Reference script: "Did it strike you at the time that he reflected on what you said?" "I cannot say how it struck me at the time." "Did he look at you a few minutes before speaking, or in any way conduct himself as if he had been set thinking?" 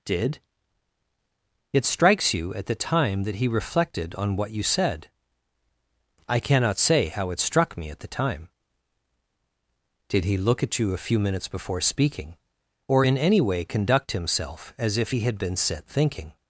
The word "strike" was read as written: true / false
false